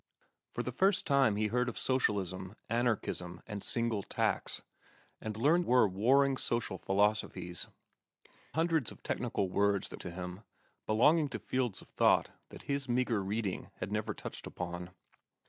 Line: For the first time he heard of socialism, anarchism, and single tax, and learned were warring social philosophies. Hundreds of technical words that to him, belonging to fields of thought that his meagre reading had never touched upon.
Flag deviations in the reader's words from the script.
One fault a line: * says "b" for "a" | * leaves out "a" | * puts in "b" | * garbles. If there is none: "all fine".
all fine